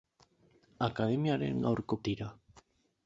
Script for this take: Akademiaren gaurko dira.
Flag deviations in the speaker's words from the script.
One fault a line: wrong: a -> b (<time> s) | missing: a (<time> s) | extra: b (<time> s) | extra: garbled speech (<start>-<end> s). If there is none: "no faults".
no faults